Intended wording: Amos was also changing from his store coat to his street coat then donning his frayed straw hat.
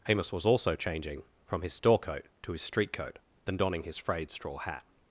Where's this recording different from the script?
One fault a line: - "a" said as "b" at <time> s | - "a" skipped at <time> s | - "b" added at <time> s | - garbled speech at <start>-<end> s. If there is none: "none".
none